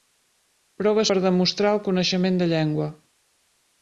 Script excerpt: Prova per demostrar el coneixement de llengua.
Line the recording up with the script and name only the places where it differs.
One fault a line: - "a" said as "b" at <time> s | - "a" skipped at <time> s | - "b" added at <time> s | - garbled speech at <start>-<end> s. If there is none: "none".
none